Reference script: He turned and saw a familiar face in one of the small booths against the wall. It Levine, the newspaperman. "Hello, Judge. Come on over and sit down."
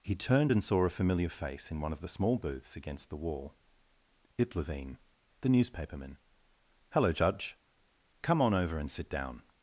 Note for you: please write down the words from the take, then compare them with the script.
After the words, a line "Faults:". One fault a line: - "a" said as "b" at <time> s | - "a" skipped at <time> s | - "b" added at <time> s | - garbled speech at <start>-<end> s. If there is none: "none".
He turned and saw a familiar face in one of the small booths against the wall. It Levine, the newspaperman. "Hello, Judge. Come on over and sit down."
Faults:
none